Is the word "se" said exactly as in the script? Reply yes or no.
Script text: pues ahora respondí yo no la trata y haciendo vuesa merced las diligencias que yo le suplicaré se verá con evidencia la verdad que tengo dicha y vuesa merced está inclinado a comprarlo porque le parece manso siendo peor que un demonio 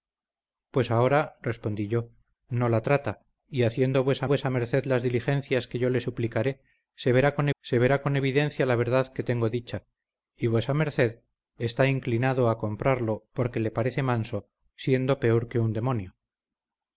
yes